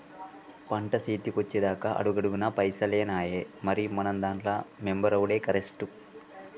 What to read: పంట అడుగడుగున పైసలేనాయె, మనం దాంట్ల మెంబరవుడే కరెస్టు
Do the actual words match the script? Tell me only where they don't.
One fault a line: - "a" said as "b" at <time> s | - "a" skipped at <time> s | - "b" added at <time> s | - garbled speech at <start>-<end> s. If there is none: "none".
- "సేతికొచ్చెదాక" added at 1.0 s
- "మరి" added at 3.6 s